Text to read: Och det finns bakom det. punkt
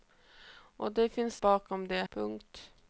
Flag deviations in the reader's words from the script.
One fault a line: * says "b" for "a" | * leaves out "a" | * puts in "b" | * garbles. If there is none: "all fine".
all fine